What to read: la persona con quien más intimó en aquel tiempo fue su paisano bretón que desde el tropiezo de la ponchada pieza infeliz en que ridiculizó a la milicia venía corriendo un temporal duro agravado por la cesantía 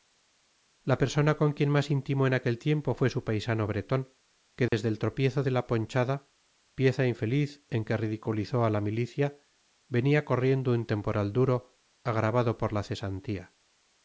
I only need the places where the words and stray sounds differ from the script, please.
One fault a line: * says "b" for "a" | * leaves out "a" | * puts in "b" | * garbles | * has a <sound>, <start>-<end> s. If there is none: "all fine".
* has a dropout, 4.7-4.7 s